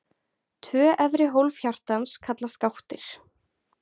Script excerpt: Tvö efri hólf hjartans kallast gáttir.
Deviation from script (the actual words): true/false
false